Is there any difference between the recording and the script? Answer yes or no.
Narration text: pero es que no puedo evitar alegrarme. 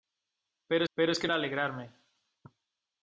yes